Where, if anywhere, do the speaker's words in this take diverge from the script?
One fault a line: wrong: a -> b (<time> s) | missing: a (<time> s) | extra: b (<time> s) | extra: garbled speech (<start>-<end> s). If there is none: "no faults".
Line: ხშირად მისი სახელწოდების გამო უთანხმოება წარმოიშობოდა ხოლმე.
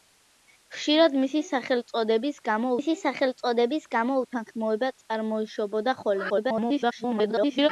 extra: მისი სახელწოდების გამო (2.8 s)
extra: garbled speech (6.3-7.7 s)